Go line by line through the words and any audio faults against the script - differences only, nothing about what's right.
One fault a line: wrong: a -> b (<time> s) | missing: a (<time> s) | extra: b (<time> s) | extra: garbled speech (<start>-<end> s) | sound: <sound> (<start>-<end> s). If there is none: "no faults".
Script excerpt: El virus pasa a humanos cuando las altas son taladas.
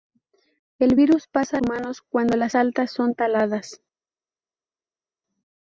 no faults